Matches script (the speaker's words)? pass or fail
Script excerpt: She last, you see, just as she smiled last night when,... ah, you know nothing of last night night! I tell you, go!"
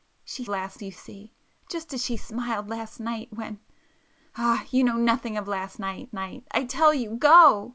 pass